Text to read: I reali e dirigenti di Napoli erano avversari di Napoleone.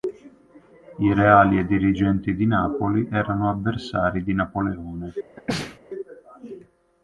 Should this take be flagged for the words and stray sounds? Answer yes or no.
yes